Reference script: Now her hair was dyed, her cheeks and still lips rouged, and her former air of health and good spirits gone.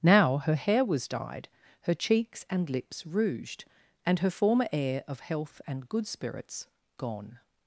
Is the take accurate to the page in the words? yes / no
no